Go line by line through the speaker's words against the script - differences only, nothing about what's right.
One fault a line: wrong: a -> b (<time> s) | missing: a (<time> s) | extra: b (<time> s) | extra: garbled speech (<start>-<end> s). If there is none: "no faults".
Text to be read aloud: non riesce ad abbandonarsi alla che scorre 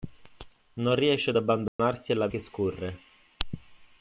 no faults